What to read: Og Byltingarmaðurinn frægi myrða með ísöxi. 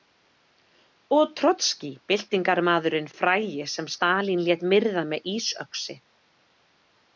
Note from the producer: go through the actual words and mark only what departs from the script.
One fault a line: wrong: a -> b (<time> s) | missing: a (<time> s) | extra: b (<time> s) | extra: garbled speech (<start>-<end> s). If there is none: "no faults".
extra: Trotskí (1.4 s)
extra: sem Stalín lét (3.8 s)